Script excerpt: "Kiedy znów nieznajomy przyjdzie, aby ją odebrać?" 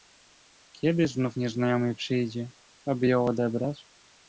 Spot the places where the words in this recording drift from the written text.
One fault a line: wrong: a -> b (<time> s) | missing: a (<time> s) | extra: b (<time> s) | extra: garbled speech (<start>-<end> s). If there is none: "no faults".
no faults